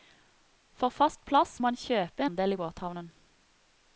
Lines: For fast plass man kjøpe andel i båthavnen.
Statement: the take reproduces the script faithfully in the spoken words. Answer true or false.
true